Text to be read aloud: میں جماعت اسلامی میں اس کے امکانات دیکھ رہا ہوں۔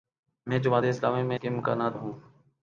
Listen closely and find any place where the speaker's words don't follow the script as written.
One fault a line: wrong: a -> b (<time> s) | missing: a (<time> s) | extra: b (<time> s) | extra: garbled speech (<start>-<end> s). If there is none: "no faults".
missing: اس (1.4 s)
missing: دیکھ رہا (2.0 s)